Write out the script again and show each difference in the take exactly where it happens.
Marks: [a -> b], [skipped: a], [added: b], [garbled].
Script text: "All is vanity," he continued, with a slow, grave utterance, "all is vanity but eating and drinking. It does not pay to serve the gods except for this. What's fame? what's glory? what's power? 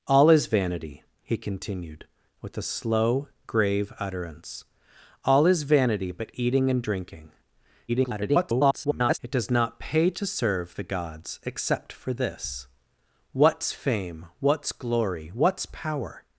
"All is vanity," he continued, with a slow, grave utterance, "all is vanity but eating and drinking. [garbled] It does not pay to serve the gods except for this. What's fame? what's glory? what's power?